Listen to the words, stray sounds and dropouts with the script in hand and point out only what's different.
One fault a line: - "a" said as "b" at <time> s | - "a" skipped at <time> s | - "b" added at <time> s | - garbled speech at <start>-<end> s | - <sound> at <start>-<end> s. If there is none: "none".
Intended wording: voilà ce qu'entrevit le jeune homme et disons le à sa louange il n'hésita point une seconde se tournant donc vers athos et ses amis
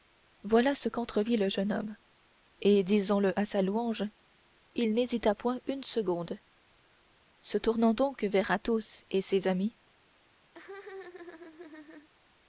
- laugh at 10.5-12.1 s